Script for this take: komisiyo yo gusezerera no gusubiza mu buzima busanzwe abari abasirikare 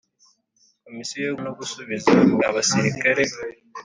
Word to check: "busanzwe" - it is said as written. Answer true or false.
false